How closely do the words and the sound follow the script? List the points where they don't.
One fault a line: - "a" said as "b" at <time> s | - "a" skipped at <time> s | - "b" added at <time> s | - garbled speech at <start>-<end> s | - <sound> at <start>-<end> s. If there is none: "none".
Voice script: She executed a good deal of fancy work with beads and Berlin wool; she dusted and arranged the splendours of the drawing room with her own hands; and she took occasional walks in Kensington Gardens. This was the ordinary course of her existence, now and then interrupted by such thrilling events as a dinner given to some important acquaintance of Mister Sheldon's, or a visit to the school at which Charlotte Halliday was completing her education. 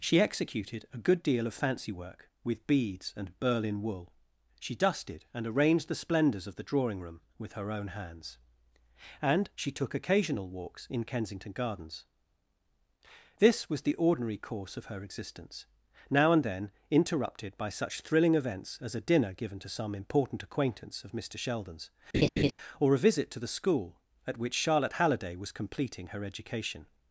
- laugh at 22.1-22.5 s